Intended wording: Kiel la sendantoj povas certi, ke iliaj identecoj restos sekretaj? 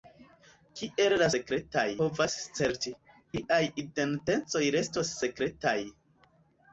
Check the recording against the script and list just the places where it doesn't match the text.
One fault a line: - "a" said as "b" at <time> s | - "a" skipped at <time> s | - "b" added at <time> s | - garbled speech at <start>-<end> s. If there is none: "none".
- "sendantoj" said as "sekretaj" at 1.4 s
- "ke" skipped at 2.9 s